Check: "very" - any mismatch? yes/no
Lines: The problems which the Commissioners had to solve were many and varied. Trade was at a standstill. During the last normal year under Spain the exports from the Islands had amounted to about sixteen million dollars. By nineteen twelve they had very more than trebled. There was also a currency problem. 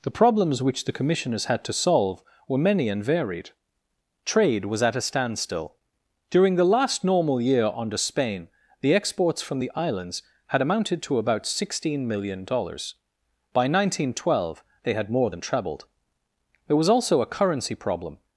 yes